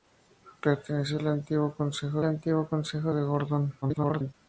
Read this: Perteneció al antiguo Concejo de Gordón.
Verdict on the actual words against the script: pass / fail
fail